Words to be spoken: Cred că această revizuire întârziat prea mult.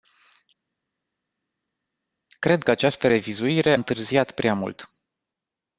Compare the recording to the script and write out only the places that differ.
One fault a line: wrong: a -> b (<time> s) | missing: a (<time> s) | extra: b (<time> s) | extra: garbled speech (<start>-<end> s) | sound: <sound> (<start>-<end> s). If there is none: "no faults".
no faults